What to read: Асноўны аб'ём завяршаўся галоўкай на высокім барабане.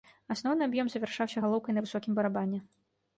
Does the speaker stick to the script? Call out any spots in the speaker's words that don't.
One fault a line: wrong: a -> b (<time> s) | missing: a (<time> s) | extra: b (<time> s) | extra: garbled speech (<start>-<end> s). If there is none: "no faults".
no faults